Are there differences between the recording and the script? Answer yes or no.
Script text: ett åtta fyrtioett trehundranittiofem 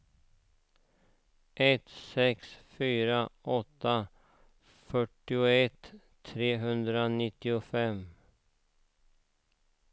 yes